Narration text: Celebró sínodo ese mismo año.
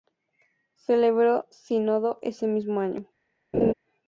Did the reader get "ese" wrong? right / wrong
right